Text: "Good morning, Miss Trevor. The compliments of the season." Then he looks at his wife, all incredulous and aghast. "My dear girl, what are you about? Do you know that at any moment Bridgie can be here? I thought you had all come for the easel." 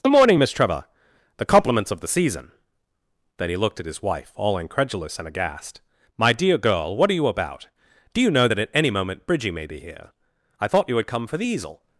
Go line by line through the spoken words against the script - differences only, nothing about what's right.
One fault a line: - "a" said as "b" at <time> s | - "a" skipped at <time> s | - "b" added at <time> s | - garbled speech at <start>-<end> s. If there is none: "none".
- "looks" said as "looked" at 3.6 s
- "can" said as "may" at 9.5 s
- "all" skipped at 11.1 s